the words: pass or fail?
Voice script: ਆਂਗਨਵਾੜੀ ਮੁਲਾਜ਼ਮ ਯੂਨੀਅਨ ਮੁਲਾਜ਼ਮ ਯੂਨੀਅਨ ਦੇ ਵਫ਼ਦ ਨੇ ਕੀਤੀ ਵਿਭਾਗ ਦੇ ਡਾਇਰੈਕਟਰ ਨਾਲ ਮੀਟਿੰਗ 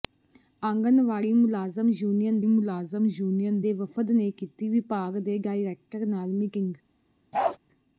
pass